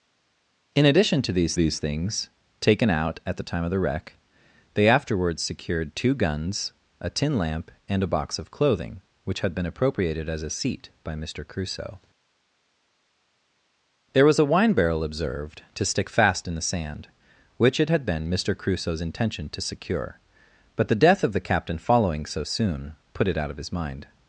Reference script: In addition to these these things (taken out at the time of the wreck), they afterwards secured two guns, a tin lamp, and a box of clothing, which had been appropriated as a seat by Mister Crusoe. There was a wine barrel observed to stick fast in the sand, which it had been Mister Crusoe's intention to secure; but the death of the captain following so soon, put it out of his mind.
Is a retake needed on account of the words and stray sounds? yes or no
no